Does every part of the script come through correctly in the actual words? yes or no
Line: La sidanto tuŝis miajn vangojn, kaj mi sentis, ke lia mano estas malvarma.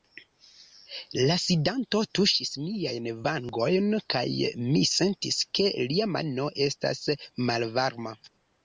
yes